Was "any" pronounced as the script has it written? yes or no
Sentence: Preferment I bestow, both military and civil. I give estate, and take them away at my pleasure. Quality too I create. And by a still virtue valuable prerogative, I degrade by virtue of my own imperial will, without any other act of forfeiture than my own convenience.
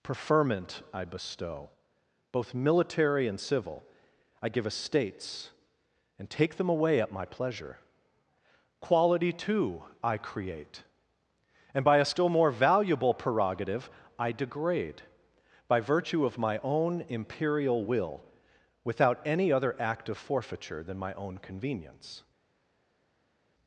yes